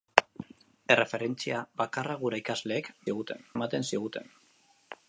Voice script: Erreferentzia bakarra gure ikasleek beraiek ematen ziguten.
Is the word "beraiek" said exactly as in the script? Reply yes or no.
no